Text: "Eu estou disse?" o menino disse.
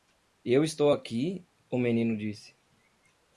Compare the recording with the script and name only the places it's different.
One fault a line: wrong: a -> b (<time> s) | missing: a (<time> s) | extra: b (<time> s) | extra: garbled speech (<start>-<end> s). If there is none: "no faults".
wrong: disse -> aqui (0.9 s)